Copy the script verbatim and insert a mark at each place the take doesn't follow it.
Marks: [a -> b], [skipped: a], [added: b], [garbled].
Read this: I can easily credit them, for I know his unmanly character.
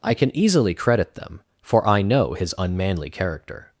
I can easily credit them, for I know his unmanly character.